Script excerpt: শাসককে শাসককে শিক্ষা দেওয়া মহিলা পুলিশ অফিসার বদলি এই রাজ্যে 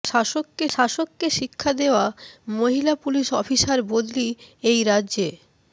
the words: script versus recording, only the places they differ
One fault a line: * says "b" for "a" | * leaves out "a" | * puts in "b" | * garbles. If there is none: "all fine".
all fine